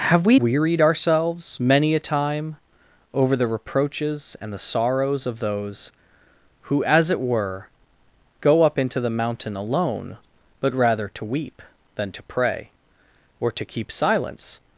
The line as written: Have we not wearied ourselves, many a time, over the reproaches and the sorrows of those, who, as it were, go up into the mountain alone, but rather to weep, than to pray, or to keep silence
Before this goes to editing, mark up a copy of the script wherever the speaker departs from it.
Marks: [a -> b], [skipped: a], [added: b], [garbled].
Have we [skipped: not] wearied ourselves, many a time, over the reproaches and the sorrows of those, who, as it were, go up into the mountain alone, but rather to weep, than to pray, or to keep silence